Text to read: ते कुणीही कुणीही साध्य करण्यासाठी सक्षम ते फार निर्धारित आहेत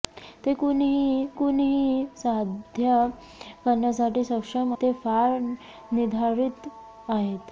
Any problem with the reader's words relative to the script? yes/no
no